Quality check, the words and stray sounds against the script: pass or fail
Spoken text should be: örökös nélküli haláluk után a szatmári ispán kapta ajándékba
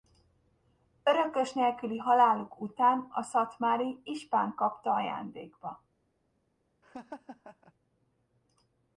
fail